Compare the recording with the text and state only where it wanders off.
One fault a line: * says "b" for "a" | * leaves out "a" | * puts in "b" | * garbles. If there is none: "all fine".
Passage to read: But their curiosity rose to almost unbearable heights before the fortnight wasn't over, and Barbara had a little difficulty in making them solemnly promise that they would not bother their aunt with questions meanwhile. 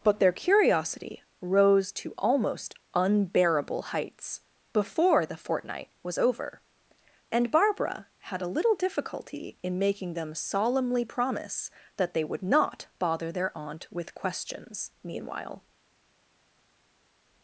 * says "was" for "wasn't"